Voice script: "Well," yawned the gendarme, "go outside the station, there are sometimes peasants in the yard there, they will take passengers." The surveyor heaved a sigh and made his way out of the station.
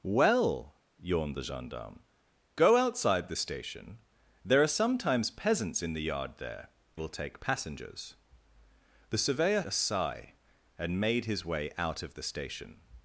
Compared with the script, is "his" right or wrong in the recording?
right